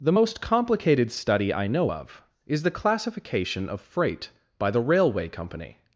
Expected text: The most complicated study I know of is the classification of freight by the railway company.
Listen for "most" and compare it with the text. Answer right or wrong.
right